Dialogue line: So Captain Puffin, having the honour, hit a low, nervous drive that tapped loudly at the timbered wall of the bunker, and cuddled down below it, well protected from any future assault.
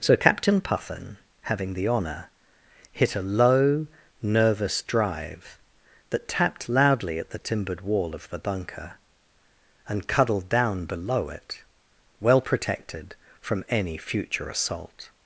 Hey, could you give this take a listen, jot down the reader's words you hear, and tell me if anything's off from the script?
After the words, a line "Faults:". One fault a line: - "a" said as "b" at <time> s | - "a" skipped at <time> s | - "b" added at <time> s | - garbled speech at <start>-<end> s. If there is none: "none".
So Captain Puffin, having the honour, hit a low, nervous drive that tapped loudly at the timbered wall of the bunker, and cuddled down below it, well protected from any future assault.
Faults:
none